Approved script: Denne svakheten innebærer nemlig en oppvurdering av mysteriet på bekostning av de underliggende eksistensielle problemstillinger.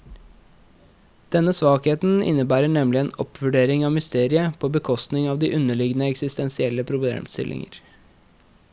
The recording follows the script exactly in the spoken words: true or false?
true